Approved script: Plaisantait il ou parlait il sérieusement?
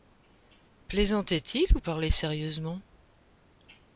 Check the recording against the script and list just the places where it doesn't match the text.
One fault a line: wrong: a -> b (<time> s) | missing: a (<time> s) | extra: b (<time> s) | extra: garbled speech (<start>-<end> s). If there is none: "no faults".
missing: il (2.1 s)